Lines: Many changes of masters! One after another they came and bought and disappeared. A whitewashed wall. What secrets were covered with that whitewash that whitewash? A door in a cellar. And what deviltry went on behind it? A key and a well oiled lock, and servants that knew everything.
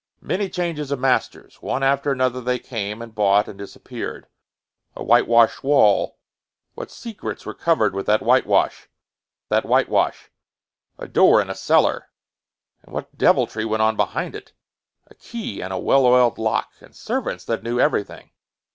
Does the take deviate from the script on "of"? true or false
false